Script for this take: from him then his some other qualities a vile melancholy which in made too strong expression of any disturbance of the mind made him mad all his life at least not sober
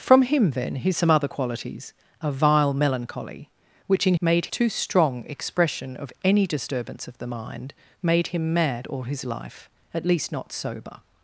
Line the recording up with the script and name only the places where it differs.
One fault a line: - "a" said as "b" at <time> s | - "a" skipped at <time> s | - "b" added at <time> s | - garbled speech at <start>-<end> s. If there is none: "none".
none